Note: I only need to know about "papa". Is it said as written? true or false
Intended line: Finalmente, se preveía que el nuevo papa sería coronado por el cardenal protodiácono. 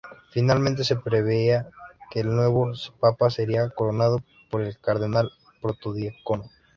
true